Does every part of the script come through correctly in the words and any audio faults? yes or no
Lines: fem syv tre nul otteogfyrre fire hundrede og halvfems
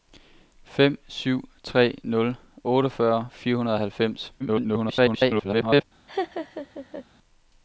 no